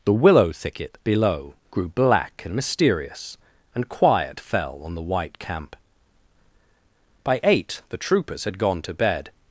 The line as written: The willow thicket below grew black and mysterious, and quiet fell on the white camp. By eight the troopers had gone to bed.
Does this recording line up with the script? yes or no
yes